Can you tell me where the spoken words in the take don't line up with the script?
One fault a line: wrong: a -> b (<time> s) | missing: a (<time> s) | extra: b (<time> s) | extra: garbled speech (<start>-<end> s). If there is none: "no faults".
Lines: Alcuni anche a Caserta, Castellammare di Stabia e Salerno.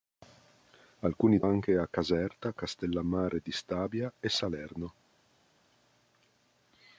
no faults